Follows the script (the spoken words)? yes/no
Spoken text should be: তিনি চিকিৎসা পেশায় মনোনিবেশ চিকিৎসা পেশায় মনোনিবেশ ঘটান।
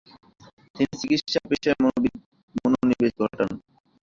no